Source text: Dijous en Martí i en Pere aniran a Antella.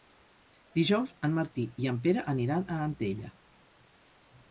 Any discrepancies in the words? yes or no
no